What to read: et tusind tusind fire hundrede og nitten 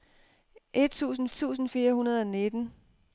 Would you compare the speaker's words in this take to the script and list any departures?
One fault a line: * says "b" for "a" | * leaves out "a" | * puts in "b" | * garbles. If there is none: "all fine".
all fine